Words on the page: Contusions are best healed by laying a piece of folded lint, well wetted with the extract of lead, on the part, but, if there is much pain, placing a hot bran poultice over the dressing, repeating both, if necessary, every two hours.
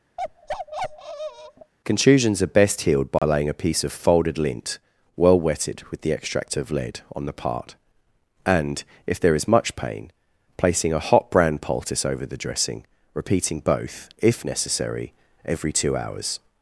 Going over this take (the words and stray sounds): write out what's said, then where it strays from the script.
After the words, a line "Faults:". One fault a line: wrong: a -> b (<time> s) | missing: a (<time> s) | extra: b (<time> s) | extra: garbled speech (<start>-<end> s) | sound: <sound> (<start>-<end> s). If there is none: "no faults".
Contusions are best healed by laying a piece of folded lint, well wetted with the extract of lead, on the part, and, if there is much pain, placing a hot bran poultice over the dressing, repeating both, if necessary, every two hours.
Faults:
sound: bark (0.2-1.7 s)
sound: dropout (3.2-3.2 s)
wrong: but -> and (8.4 s)